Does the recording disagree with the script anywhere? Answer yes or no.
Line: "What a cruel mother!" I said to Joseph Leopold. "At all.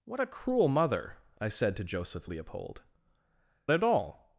no